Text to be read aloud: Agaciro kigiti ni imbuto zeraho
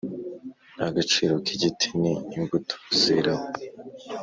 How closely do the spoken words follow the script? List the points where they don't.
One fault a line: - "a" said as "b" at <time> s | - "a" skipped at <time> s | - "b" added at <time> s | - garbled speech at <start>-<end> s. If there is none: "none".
none